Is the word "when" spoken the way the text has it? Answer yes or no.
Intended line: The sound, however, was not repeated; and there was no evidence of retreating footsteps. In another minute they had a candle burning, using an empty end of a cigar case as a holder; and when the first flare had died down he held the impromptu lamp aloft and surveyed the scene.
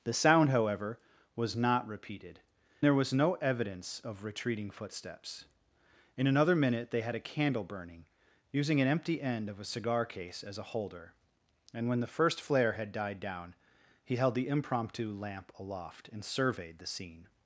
yes